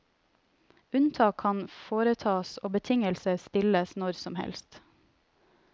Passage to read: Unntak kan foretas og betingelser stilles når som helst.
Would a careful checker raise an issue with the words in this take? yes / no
no